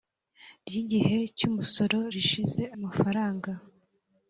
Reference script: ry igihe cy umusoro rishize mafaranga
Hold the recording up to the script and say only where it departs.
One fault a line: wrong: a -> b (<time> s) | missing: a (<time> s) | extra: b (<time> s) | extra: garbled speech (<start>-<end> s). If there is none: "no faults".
no faults